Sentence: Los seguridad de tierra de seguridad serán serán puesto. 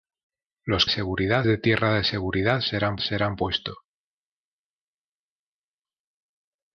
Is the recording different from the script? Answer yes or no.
no